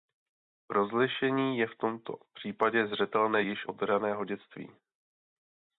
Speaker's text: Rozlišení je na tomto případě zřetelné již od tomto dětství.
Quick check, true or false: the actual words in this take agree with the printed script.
false